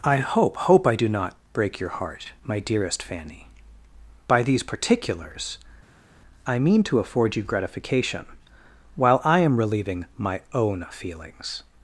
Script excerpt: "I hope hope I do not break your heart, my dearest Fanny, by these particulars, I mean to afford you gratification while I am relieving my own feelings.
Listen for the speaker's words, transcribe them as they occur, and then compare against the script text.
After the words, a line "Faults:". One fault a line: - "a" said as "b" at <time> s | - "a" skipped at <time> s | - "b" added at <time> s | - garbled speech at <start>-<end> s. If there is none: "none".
"I hope hope I do not break your heart, my dearest Fanny, by these particulars, I mean to afford you gratification while I am relieving my own feelings.
Faults:
none